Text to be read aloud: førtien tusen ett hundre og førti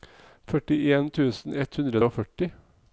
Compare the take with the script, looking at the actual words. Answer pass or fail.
pass